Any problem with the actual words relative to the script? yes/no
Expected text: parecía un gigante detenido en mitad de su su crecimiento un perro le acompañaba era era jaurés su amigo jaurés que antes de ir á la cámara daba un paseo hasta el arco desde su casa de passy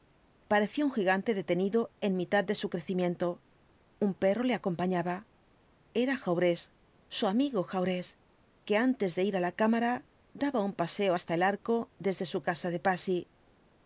yes